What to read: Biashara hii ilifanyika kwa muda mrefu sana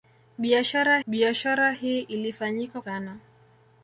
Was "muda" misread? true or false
true